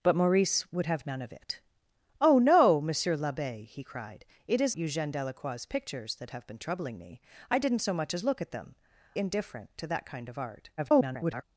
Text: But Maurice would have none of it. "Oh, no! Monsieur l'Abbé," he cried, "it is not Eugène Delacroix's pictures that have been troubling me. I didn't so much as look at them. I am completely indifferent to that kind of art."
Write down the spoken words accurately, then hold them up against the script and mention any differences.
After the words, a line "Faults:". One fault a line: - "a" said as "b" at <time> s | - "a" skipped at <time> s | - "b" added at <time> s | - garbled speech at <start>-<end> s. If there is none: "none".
But Maurice would have none of it. "Oh, no! Monsieur l'Abbé," he cried, "it is Eugène Delacroix's pictures that have been troubling me. I didn't so much as look at them. indifferent to that kind of art." [garbled]
Faults:
- "not" skipped at 4.8 s
- "I am completely" skipped at 8.7 s
- garbled speech at 10.8-11.4 s